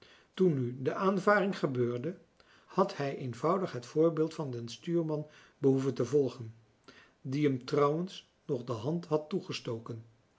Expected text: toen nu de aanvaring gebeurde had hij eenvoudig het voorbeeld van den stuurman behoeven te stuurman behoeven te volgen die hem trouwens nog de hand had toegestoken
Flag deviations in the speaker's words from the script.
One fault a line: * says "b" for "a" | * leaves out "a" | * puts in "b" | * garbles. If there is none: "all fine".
* leaves out "stuurman behoeven te"